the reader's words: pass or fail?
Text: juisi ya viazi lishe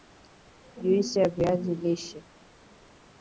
pass